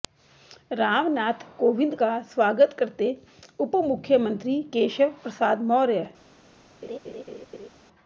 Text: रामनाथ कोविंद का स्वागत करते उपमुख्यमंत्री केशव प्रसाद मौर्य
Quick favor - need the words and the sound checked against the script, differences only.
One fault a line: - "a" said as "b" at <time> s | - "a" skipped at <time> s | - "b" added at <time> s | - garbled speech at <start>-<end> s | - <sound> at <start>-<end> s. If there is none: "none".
- laugh at 6.8-7.7 s